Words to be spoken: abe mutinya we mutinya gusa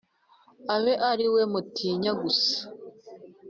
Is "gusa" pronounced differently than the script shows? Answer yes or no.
no